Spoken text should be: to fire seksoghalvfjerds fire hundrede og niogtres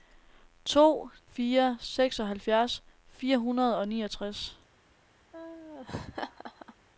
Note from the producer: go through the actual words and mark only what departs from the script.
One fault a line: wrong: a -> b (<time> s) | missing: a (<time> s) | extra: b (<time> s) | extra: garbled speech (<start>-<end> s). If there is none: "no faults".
no faults